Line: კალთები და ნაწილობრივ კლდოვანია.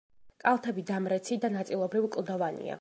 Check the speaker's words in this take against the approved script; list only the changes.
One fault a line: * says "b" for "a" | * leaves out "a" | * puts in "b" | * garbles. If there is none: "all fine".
* puts in "დამრეცი"